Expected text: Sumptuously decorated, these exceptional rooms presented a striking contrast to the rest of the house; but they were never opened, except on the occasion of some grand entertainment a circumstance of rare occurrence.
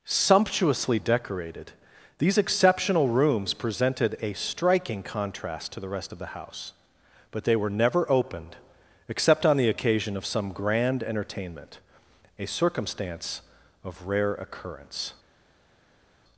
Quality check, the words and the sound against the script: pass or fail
pass